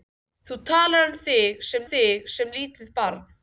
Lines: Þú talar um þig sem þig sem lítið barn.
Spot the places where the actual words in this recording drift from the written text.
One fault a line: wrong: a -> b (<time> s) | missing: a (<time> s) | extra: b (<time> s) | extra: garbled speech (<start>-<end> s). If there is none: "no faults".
no faults